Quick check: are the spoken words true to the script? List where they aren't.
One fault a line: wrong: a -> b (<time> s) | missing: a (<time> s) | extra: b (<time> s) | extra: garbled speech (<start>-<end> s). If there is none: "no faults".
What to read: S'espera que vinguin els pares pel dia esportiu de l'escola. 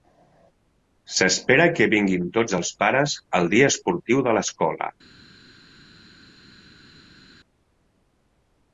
extra: tots (2.4 s)
wrong: pel -> al (3.4 s)